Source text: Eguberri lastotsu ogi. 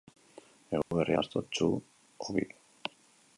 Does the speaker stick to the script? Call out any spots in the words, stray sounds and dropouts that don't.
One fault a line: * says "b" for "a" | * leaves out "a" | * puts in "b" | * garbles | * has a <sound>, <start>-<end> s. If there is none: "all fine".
* has a dropout, 0.8-0.9 s